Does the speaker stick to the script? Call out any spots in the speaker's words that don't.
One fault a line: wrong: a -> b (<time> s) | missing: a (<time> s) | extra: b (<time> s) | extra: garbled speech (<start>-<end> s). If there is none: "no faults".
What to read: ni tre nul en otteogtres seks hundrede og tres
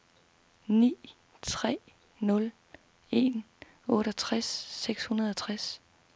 no faults